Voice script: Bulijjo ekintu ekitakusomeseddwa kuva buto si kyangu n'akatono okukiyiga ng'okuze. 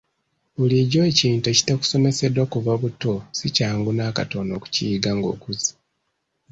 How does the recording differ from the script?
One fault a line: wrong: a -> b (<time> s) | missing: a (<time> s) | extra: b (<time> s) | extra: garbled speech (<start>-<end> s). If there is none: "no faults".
no faults